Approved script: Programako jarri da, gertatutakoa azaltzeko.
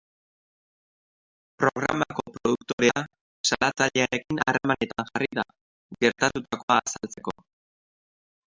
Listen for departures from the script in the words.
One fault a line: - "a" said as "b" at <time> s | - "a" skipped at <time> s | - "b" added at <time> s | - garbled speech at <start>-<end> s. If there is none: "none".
- "produktorea salatzailearekin harremanetan" added at 2.4 s